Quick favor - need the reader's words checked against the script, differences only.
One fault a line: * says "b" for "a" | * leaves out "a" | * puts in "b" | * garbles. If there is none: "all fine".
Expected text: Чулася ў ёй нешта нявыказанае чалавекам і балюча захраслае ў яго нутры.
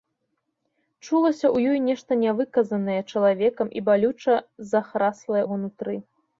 * leaves out "ў"